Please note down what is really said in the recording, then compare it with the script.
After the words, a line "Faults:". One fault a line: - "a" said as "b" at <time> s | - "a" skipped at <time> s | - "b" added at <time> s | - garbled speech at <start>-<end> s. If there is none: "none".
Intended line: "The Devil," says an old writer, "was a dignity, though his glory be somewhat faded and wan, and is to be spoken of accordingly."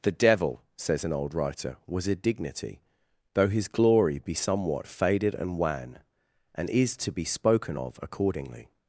"The Devil," says an old writer, "was a dignity, though his glory be somewhat faded and wan, and is to be spoken of accordingly."
Faults:
none